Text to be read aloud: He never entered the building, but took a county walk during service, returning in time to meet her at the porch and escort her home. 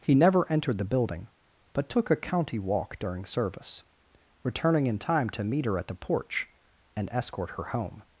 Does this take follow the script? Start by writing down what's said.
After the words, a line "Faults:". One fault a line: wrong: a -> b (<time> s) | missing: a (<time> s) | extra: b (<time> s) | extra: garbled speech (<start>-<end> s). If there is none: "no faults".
He never entered the building, but took a county walk during service, returning in time to meet her at the porch and escort her home.
Faults:
no faults